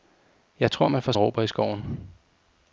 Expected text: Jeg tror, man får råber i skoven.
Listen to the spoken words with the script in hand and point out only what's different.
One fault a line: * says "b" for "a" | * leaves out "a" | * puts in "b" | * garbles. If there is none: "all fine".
all fine